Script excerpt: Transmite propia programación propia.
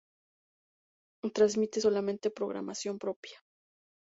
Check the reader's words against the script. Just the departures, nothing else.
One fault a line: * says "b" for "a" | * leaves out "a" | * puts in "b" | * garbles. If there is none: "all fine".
* says "solamente" for "propia"